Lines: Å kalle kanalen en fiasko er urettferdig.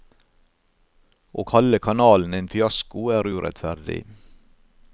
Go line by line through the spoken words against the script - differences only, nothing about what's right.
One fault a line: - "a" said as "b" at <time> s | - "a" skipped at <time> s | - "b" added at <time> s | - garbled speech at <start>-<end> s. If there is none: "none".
none